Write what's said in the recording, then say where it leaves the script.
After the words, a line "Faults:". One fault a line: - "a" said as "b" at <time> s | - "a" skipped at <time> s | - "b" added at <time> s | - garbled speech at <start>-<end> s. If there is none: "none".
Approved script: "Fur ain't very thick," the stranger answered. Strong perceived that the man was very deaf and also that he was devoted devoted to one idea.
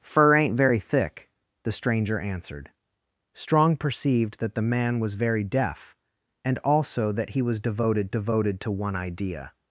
"Fur ain't very thick," the stranger answered. Strong perceived that the man was very deaf and also that he was devoted devoted to one idea.
Faults:
none